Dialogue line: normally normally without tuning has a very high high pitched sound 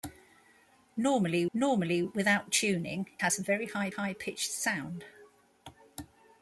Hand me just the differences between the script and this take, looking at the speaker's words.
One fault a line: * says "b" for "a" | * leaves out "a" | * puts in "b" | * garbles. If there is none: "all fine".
all fine